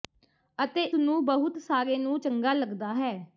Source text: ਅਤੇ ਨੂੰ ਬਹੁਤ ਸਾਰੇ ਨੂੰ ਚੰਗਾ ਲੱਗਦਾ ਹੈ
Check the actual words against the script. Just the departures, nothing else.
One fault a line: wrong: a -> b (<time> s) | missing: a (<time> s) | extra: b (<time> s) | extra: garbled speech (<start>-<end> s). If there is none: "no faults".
no faults